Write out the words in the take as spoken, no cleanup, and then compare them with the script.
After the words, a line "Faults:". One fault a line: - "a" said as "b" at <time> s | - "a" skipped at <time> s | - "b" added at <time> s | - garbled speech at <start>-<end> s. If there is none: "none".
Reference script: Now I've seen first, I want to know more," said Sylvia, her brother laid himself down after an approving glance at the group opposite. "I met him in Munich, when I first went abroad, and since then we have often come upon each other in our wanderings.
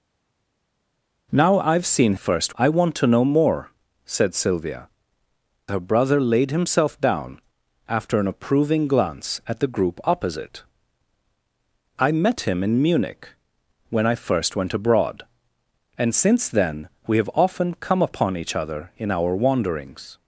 Now I've seen first, I want to know more," said Sylvia, her brother laid himself down after an approving glance at the group opposite. "I met him in Munich, when I first went abroad, and since then we have often come upon each other in our wanderings.
Faults:
none